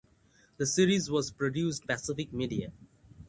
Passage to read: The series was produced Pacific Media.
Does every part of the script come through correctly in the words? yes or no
yes